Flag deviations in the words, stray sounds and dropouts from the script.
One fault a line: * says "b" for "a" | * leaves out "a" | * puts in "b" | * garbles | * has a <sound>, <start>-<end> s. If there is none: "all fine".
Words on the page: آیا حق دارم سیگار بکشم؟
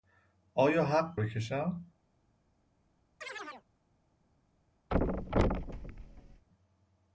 * leaves out "دارم سیگار"
* has a chirp, 3.2-3.7 s
* has a thud, 4.9-6.5 s